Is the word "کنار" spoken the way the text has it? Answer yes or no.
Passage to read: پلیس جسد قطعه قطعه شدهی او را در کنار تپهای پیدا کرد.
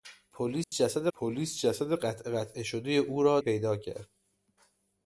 no